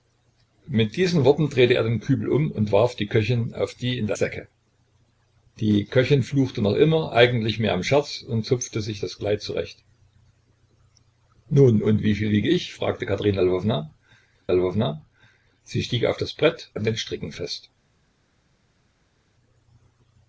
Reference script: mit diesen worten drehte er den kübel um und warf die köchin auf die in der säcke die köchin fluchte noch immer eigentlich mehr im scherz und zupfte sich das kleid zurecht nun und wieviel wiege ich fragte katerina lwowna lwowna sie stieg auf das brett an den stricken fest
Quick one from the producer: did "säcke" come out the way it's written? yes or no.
yes